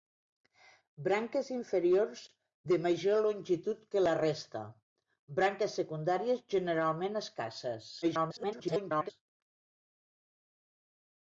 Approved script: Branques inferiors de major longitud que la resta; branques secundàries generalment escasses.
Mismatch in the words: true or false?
true